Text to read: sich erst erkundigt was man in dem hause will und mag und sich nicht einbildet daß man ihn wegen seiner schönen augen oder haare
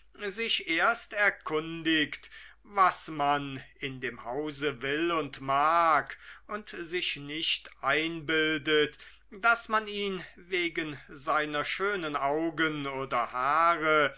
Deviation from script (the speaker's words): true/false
false